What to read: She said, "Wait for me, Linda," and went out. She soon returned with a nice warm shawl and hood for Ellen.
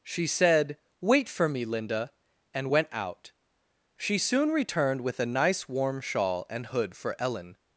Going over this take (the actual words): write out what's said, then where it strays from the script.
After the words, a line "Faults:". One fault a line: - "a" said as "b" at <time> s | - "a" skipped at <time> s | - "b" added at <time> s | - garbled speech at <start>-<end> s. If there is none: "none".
She said, "Wait for me, Linda," and went out. She soon returned with a nice warm shawl and hood for Ellen.
Faults:
none